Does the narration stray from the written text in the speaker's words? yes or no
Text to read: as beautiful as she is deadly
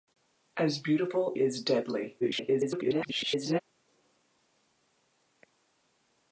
yes